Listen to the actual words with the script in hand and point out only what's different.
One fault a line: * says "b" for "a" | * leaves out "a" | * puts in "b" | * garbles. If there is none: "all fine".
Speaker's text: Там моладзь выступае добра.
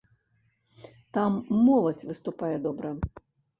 all fine